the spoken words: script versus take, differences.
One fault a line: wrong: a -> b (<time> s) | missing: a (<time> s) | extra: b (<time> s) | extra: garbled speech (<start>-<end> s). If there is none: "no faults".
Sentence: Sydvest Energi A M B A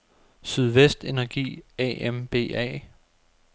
no faults